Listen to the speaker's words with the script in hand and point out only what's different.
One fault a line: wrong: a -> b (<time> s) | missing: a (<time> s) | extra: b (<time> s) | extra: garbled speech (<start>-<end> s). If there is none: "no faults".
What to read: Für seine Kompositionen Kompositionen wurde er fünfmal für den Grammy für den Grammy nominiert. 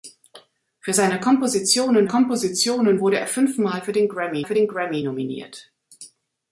no faults